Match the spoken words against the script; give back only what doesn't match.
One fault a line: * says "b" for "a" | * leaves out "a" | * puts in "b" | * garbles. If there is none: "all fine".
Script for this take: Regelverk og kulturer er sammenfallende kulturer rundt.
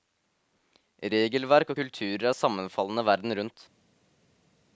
* says "verden" for "kulturer"